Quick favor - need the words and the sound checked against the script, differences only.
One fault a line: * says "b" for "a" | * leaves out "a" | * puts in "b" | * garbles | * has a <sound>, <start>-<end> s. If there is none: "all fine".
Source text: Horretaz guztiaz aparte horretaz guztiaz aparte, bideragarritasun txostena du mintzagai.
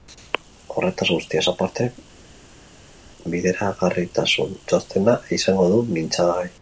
* leaves out "horretaz guztiaz aparte"
* puts in "izango"